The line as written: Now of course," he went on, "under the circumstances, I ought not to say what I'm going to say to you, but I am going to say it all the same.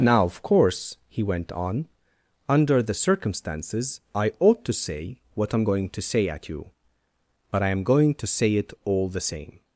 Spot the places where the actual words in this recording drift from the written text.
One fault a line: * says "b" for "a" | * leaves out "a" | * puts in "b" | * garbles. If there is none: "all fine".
* leaves out "not"
* says "at" for "to"